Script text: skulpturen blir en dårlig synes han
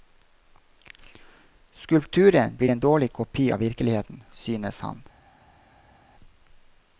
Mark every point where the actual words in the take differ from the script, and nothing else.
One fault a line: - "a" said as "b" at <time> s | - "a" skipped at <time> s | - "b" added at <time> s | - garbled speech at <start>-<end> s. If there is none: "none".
- "kopi av virkeligheten" added at 3.1 s